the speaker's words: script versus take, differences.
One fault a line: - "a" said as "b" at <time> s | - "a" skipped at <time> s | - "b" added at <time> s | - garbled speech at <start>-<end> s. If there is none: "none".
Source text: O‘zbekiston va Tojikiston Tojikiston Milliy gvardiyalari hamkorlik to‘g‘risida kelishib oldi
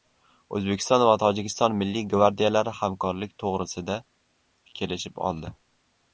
- "Tojikiston" skipped at 1.8 s